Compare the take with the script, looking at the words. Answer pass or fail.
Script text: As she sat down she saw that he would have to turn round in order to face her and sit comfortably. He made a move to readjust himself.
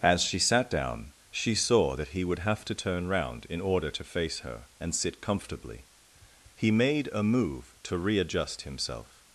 pass